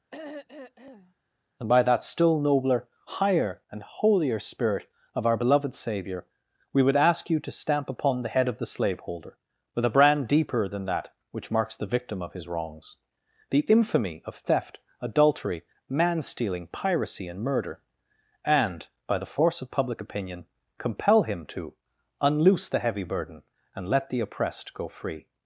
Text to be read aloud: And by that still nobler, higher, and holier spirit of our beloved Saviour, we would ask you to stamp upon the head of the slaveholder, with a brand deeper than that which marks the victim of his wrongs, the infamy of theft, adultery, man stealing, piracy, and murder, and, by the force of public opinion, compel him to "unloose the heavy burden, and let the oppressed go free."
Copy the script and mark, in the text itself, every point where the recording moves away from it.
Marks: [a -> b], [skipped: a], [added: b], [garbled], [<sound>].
[throat clearing] And by that still nobler, higher, and holier spirit of our beloved Saviour, we would ask you to stamp upon the head of the slaveholder, with a brand deeper than that which marks the victim of his wrongs, the infamy of theft, adultery, man stealing, piracy, and murder, and, by the force of public opinion, compel him to "unloose the heavy burden, and let the oppressed go free."